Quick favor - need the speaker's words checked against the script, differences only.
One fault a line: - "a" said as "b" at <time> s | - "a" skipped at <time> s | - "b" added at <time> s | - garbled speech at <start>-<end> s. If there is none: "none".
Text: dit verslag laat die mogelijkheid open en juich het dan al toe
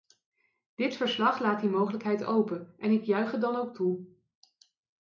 - "ik" added at 2.9 s
- "al" said as "ook" at 3.5 s